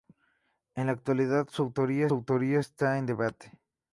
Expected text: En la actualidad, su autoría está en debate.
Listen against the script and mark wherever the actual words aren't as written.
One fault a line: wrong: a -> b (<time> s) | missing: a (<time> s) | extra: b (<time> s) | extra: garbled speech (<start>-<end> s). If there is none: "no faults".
extra: autoría (2.1 s)